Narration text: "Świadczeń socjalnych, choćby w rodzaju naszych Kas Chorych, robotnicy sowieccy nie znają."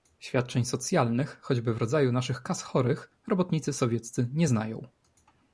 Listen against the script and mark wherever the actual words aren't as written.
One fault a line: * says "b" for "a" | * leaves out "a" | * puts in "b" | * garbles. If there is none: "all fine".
all fine